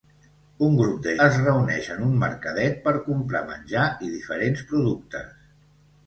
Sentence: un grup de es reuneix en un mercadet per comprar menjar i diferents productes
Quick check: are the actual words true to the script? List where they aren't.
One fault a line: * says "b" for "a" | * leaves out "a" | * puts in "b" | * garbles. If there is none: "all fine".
all fine